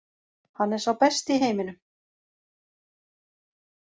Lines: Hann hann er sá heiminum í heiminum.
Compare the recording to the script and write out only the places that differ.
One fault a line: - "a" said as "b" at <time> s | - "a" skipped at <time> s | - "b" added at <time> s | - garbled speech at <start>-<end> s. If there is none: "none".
- "hann" skipped at 0.7 s
- "heiminum" said as "besti" at 1.0 s